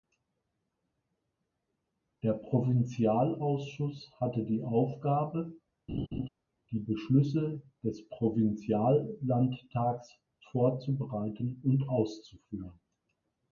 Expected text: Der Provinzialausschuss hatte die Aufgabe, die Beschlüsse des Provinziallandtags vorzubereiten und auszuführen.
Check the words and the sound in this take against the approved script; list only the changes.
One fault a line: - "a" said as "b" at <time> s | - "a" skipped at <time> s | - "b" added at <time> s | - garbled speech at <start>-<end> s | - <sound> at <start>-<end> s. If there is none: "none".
- laugh at 5.9-6.3 s